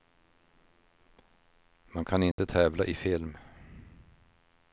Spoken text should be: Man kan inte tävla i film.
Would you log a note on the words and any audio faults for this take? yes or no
yes